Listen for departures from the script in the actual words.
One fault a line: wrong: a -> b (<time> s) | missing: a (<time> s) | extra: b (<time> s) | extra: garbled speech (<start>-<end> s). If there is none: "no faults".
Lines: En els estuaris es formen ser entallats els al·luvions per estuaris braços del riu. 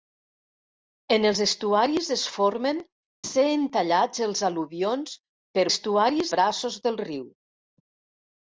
no faults